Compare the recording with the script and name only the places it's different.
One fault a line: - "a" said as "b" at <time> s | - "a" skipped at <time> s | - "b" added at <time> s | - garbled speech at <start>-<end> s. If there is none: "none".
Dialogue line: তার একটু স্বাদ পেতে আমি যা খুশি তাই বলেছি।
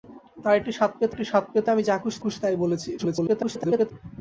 - "একটু স্বাদ পেতে" added at 1.1 s
- "খুশি" added at 2.2 s
- garbled speech at 3.0-3.9 s